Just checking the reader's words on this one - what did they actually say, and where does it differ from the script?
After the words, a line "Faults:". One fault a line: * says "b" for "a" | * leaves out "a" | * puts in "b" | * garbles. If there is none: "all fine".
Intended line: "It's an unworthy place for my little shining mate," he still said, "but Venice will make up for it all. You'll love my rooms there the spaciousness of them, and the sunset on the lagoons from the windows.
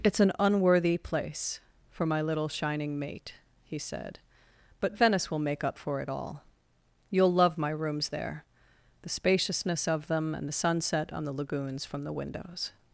"It's an unworthy place for my little shining mate," he said, "but Venice will make up for it all. You'll love my rooms there the spaciousness of them, and the sunset on the lagoons from the windows.
Faults:
* leaves out "still"